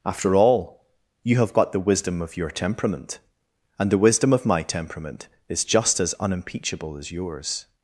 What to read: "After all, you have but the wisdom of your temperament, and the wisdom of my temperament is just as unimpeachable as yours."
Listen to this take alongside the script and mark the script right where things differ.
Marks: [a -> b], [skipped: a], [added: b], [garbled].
"After all, you have [but -> got] the wisdom of your temperament, and the wisdom of my temperament is just as unimpeachable as yours."